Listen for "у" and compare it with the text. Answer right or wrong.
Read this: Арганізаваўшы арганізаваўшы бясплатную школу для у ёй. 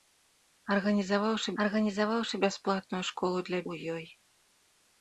right